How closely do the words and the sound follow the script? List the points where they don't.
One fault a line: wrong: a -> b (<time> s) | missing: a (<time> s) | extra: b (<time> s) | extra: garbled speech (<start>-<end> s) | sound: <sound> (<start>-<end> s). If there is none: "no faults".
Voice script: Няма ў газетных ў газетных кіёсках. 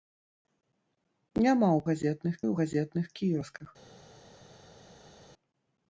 no faults